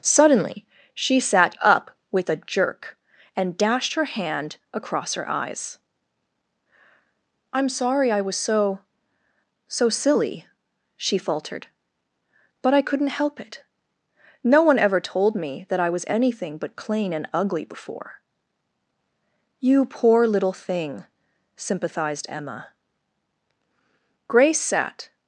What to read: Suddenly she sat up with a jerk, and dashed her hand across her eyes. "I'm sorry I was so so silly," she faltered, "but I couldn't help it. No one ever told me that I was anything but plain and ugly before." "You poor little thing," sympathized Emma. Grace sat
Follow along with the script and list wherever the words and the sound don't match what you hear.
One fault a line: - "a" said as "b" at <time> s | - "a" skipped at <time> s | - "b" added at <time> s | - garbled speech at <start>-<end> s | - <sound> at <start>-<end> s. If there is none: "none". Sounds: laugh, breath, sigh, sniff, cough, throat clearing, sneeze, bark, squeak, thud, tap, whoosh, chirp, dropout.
none